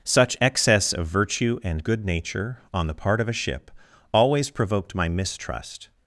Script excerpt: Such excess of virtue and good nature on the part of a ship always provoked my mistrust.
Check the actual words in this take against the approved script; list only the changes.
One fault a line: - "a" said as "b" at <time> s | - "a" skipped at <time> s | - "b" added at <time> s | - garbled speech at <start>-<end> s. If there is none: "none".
none